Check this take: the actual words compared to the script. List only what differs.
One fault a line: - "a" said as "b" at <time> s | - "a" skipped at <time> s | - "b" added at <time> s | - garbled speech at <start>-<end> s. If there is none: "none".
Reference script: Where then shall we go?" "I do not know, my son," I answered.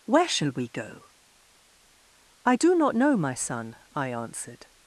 - "then" skipped at 0.3 s